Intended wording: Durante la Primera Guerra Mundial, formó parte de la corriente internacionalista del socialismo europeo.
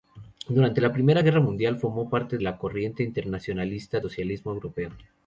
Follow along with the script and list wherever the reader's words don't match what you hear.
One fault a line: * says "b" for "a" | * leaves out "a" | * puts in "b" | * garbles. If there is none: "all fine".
* leaves out "de"
* leaves out "del"